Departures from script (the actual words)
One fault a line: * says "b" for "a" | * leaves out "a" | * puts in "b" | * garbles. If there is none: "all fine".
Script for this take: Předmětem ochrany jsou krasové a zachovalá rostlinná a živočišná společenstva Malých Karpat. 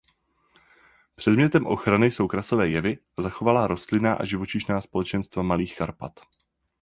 * puts in "jevy"